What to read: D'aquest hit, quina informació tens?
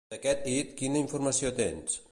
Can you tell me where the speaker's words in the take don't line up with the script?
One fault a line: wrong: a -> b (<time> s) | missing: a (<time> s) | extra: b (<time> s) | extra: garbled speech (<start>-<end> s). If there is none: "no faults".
no faults